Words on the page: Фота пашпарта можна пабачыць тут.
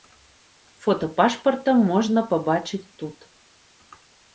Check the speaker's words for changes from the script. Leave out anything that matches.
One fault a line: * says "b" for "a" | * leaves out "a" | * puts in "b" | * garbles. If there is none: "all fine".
all fine